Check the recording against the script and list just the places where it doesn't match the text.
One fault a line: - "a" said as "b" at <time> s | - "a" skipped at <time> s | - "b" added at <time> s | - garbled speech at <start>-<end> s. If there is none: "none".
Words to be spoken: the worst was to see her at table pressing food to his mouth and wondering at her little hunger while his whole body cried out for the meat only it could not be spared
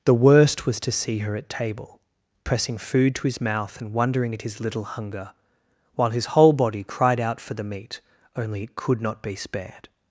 - "her" said as "his" at 4.4 s